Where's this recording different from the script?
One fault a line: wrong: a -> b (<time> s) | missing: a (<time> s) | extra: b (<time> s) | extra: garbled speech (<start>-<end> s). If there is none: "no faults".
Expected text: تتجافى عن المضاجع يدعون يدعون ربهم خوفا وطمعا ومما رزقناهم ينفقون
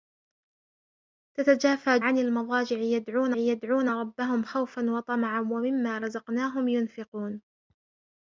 no faults